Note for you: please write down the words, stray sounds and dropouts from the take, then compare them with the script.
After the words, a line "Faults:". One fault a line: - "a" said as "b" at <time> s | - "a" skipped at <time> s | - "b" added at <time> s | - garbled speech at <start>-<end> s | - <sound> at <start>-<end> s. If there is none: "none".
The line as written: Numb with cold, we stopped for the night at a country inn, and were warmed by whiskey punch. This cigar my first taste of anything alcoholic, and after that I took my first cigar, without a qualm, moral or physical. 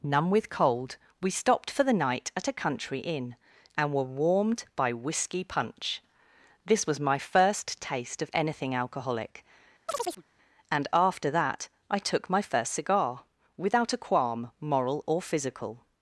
Numb with cold, we stopped for the night at a country inn, and were warmed by whiskey punch. This was my first taste of anything alcoholic, and after that I took my first cigar, without a qualm, moral or physical.
Faults:
- "cigar" said as "was" at 6.9 s
- chirp at 9.9-10.2 s